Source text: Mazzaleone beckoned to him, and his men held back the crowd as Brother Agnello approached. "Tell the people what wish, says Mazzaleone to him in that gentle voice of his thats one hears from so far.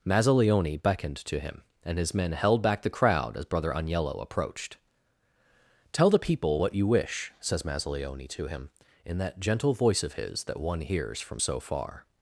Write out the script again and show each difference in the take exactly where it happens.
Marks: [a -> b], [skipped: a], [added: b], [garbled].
Mazzaleone beckoned to him, and his men held back the crowd as Brother Agnello approached. "Tell the people what [added: you] wish, says Mazzaleone to him in that gentle voice of his [thats -> that] one hears from so far.